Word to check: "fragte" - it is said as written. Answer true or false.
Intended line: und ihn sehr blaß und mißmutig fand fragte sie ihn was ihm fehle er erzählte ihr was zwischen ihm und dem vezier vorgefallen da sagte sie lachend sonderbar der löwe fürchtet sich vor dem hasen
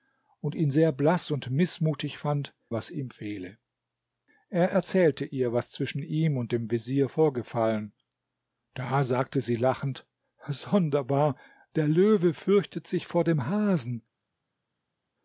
false